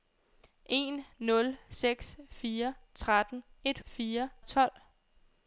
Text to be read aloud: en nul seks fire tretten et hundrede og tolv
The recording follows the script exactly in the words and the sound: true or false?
false